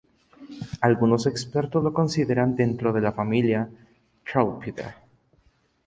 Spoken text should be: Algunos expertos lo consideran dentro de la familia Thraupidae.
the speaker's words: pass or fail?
pass